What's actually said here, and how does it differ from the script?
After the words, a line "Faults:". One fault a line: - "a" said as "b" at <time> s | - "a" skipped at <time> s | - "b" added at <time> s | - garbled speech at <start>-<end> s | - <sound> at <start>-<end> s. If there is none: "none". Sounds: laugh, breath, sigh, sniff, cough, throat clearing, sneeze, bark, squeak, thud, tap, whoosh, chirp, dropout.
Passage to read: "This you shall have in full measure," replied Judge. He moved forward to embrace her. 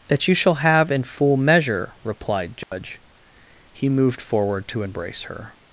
"That you shall have in full measure," replied Judge. He moved forward to embrace her.
Faults:
- "This" said as "That" at 0.1 s
- dropout at 2.6-2.7 s